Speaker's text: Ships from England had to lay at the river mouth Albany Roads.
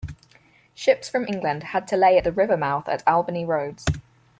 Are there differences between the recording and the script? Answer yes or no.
yes